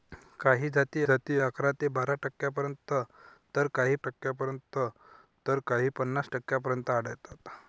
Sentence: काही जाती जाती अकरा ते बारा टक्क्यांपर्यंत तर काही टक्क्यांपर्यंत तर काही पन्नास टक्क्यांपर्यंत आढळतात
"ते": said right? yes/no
yes